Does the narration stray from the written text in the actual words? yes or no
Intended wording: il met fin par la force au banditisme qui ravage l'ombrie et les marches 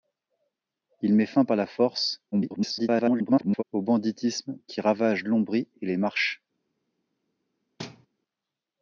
yes